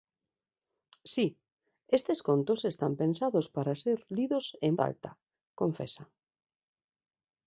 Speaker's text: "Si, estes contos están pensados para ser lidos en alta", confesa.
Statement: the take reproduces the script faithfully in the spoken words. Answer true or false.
true